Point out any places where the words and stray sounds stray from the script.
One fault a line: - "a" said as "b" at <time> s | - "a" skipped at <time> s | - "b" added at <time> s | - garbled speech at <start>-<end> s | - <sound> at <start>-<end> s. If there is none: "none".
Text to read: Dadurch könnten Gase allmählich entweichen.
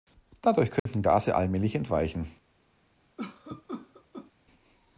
- dropout at 0.8-0.9 s
- cough at 3.2-4.3 s